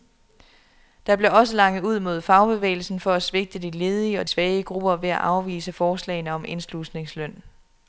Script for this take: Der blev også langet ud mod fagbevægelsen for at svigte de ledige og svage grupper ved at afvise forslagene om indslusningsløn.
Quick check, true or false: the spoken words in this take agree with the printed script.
true